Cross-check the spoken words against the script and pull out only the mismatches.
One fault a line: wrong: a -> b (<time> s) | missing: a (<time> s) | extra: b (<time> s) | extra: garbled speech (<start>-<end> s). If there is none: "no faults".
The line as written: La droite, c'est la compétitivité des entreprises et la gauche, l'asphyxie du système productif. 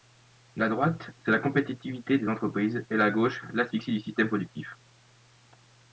no faults